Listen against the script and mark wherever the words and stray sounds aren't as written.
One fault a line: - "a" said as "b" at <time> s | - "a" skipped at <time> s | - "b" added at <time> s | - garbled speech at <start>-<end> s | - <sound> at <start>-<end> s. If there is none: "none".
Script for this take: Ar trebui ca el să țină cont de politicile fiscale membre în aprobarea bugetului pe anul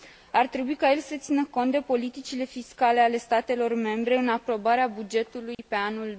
- "ale statelor" added at 3.0 s
- dropout at 5.5-5.6 s